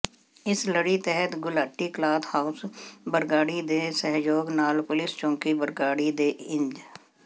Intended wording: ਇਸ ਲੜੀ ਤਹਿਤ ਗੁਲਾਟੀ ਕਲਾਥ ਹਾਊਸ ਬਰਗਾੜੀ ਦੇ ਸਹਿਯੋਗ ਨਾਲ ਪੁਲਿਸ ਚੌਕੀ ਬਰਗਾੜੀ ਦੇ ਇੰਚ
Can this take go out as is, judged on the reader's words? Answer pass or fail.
pass